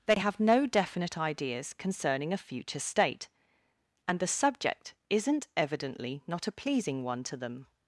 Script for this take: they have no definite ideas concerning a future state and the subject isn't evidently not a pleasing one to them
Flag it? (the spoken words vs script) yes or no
no